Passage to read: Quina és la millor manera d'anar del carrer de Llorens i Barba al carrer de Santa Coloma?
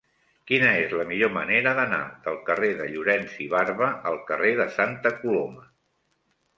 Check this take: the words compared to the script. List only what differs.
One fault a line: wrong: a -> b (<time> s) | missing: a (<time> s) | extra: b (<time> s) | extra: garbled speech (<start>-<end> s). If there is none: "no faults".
no faults